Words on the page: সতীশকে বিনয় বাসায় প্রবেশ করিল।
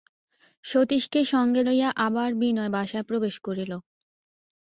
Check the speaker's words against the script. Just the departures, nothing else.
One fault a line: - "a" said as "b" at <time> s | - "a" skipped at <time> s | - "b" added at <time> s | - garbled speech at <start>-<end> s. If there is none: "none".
- "সঙ্গে লইয়া আবার" added at 1.3 s